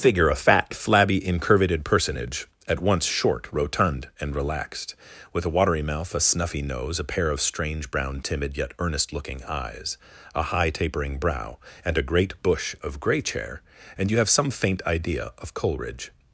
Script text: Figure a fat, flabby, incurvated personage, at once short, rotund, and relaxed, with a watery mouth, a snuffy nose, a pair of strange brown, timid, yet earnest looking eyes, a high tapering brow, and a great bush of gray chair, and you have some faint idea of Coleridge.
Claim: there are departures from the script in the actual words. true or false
false